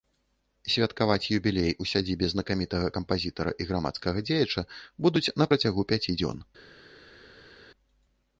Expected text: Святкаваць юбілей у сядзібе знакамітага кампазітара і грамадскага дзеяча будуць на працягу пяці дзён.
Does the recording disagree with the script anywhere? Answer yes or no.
no